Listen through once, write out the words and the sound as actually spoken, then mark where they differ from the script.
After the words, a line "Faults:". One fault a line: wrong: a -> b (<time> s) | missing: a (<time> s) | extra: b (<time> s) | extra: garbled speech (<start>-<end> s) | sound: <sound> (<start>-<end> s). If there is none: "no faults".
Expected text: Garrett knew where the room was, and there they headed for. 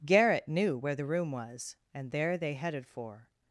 Garrett knew where the room was, and there they headed for.
Faults:
no faults